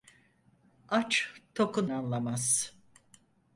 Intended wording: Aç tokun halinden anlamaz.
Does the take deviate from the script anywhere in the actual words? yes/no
yes